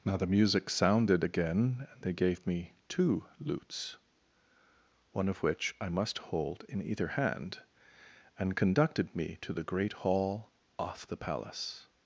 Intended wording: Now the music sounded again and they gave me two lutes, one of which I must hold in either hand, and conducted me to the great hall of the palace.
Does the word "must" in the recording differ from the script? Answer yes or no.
no